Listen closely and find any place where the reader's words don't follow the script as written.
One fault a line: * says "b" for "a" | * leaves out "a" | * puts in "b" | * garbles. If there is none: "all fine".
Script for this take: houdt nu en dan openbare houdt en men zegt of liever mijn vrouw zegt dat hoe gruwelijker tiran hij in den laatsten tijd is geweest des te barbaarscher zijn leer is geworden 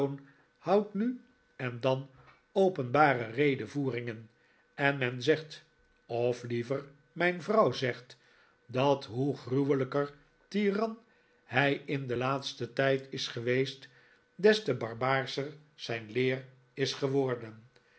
* says "redevoeringen" for "houdt"